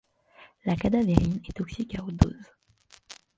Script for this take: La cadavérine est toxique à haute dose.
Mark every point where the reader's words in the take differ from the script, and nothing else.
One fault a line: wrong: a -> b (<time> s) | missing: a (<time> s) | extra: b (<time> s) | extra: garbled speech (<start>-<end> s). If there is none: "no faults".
no faults